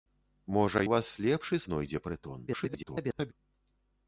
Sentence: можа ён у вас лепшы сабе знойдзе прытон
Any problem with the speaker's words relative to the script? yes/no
yes